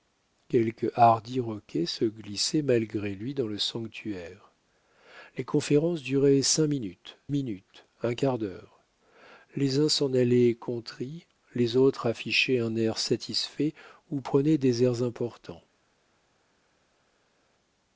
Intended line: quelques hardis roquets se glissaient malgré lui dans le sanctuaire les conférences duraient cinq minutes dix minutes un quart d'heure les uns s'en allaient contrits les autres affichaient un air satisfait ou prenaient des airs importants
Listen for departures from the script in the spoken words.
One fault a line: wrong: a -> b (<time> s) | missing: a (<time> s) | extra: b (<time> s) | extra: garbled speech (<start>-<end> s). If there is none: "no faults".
missing: dix (7.2 s)